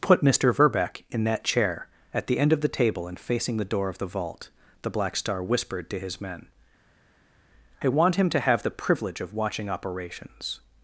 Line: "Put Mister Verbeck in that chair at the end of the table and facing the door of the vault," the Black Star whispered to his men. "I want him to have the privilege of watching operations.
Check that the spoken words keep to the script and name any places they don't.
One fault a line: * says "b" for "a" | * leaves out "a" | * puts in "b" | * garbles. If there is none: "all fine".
all fine